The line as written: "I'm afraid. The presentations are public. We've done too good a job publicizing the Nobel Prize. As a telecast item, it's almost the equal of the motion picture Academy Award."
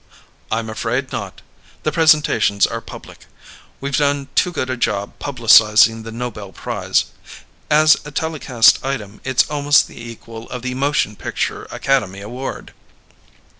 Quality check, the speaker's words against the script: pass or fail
fail